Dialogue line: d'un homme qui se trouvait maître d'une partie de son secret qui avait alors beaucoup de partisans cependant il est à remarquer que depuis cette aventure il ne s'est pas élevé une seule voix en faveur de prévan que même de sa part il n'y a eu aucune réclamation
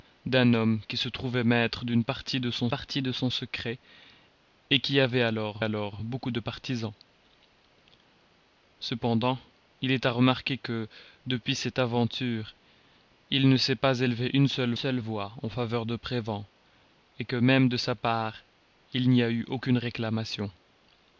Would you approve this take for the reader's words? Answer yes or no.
no